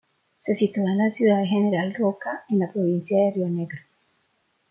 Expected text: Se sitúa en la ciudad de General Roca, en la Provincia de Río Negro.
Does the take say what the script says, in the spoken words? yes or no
yes